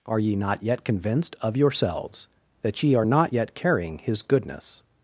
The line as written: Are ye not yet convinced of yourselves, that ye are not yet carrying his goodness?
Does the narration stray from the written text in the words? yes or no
no